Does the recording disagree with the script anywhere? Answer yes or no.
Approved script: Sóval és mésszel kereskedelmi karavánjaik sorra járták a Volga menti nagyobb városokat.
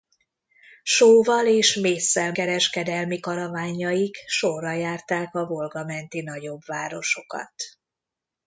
no